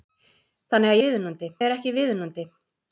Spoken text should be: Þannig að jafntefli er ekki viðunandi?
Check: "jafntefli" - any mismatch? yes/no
yes